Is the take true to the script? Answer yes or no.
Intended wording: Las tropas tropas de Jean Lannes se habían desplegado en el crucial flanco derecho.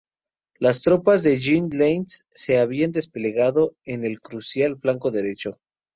no